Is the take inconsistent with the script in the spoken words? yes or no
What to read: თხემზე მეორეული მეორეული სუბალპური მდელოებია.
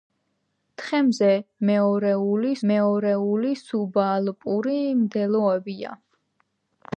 no